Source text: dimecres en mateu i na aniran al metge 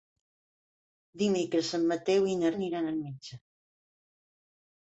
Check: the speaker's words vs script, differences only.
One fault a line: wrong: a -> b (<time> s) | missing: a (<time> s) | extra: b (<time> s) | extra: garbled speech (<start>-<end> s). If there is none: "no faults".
no faults